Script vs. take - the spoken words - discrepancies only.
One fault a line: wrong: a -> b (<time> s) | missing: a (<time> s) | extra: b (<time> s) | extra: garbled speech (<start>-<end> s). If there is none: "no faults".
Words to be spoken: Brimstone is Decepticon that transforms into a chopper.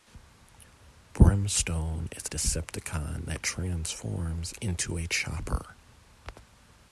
no faults